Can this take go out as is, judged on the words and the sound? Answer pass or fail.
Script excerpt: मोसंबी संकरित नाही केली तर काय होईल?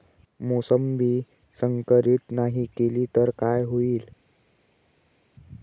pass